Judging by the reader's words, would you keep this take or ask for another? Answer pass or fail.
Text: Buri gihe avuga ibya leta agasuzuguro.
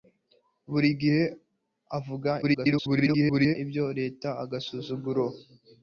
fail